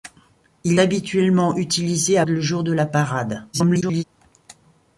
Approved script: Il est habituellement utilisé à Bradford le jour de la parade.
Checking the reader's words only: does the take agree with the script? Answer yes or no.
no